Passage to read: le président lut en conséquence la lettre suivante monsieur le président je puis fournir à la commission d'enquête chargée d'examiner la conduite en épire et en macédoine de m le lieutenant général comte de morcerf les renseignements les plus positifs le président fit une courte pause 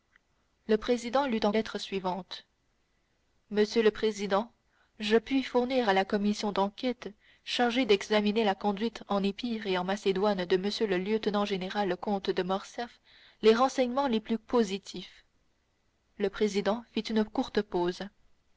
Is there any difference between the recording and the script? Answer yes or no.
yes